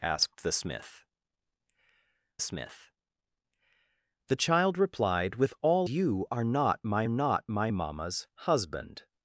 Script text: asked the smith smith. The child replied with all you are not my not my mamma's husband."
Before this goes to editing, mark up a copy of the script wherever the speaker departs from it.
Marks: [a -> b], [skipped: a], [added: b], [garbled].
asked the smith smith. The child replied with all you are not my not my mamma's husband."